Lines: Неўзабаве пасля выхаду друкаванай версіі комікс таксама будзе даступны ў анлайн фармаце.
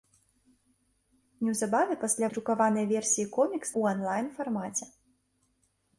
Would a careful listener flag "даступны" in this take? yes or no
yes